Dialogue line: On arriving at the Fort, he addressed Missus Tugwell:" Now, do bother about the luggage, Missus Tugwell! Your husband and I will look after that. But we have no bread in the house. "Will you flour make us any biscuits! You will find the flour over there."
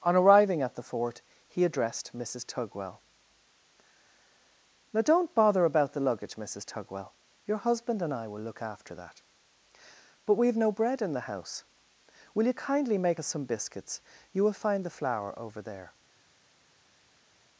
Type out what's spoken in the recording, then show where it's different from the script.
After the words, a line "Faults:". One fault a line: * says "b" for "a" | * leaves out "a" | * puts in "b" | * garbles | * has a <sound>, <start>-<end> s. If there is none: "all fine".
On arriving at the Fort, he addressed Missus Tugwell:" Now, don't bother about the luggage, Missus Tugwell! Your husband and I will look after that. But we have no bread in the house. "Will you kindly make us some biscuits! You will find the flour over there."
Faults:
* says "don't" for "do"
* says "kindly" for "flour"
* says "some" for "any"